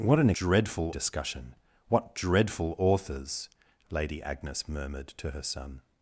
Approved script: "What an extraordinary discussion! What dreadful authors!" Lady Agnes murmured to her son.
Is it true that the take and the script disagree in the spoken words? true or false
true